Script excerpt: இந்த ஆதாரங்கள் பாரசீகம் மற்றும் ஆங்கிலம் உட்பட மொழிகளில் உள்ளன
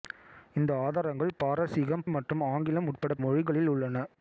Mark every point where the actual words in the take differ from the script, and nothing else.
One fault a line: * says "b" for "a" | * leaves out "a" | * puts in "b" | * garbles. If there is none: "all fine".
all fine